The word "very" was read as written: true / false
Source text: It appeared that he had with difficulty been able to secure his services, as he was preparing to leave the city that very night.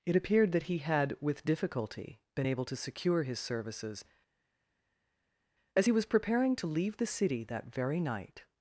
true